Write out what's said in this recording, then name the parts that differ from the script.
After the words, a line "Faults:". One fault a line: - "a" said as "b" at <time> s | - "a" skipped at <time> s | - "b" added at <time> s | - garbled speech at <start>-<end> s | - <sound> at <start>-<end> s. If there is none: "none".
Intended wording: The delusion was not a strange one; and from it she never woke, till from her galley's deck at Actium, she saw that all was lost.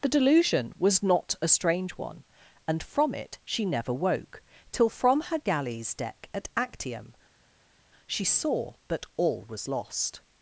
The delusion was not a strange one; and from it she never woke, till from her galley's deck at Actium, she saw that all was lost.
Faults:
none